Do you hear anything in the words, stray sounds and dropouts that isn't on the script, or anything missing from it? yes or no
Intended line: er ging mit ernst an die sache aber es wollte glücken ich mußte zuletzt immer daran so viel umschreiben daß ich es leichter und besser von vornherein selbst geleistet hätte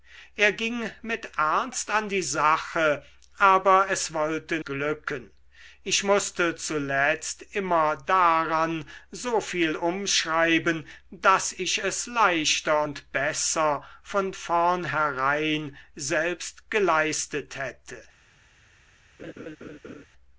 yes